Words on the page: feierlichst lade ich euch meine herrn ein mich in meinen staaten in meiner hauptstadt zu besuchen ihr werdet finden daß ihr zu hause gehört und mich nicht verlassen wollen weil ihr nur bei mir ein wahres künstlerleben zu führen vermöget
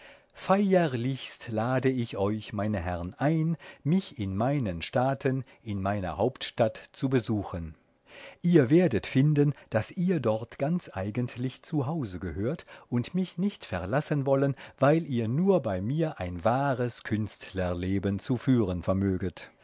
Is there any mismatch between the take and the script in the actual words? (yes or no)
yes